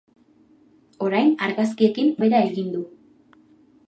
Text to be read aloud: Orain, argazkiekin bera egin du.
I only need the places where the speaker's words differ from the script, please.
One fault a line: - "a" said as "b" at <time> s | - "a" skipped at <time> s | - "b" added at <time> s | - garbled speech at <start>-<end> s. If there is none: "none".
none